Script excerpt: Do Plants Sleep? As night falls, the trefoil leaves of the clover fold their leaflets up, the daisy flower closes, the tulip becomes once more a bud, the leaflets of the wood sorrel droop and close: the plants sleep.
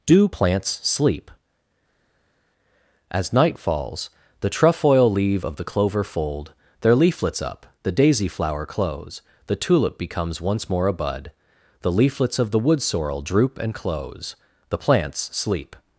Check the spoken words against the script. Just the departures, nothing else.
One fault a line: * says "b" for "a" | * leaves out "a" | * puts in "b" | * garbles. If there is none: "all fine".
* says "leave" for "leaves"
* says "close" for "closes"